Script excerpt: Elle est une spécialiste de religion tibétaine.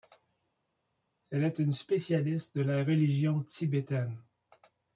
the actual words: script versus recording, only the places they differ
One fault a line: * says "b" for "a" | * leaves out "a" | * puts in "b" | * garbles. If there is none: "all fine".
* puts in "la"